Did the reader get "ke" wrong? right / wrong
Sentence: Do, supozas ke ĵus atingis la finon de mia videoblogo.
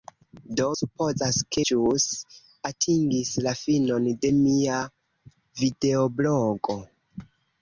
right